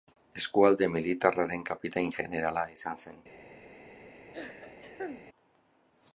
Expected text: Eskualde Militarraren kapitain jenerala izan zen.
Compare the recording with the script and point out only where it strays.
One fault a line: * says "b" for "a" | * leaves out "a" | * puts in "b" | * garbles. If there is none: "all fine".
all fine